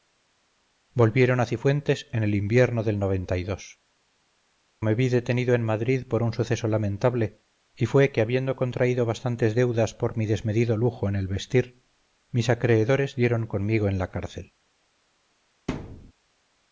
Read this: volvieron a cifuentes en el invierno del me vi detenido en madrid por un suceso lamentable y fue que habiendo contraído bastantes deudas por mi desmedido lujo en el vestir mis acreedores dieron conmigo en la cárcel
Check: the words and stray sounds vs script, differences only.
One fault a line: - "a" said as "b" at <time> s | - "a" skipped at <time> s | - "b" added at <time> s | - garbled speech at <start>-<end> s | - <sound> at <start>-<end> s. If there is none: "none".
- thud at 15.7-16.1 s